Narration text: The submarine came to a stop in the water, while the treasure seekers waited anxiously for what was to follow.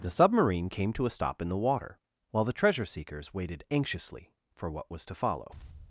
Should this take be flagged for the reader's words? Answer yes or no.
no